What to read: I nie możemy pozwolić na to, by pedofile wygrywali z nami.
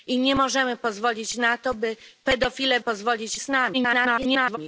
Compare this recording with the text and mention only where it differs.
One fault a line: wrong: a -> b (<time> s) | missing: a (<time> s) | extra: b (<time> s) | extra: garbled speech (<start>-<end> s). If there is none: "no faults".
wrong: wygrywali -> pozwolić (2.8 s)
extra: garbled speech (3.7-4.6 s)